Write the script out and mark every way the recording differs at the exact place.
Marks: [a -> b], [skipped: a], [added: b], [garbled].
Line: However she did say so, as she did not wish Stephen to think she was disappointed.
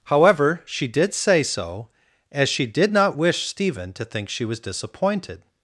However she did say so, as she did not wish Stephen to think she was disappointed.